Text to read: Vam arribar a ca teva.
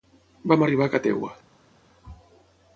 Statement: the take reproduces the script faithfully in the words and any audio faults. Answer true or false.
true